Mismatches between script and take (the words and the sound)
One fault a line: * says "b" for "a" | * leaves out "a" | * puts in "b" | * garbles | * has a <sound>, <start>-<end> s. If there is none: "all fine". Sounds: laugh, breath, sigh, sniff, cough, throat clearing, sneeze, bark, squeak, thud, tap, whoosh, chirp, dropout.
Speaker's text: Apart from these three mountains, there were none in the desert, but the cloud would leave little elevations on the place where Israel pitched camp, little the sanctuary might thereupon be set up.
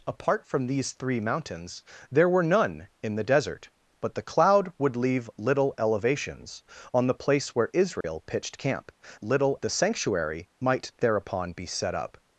* has a dropout, 8.0-8.0 s